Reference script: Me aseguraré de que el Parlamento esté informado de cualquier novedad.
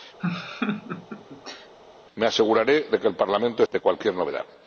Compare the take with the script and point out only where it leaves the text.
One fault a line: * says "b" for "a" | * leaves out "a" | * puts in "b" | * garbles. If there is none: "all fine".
* leaves out "esté informado"